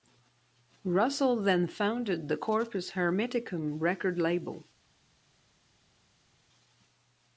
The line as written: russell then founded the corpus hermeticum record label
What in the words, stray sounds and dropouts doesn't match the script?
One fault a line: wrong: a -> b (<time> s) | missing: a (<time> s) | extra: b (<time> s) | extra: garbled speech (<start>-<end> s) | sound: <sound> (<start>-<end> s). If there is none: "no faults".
no faults